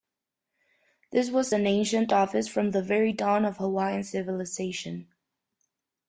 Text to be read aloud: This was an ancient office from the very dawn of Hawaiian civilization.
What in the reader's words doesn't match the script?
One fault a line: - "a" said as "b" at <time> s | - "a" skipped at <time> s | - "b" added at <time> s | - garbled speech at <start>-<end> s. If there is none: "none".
none